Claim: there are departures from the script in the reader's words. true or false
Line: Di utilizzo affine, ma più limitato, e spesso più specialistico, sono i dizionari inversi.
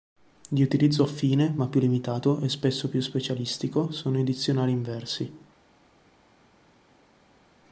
false